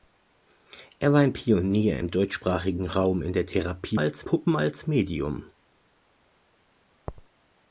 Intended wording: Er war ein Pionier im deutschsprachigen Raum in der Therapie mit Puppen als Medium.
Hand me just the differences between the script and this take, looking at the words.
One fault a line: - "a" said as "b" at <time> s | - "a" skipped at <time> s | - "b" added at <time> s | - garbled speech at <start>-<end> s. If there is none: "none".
- "mit" said as "als" at 4.0 s